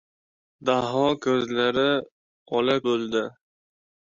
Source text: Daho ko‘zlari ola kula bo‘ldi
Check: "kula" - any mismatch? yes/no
yes